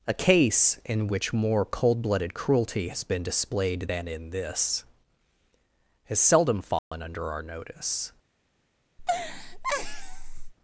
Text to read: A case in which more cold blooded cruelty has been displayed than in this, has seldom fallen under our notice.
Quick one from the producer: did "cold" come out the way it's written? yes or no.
yes